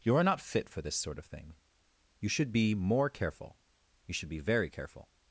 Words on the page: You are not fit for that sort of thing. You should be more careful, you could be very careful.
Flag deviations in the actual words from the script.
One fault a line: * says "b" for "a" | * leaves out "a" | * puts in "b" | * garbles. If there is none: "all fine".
* says "this" for "that"
* says "should" for "could"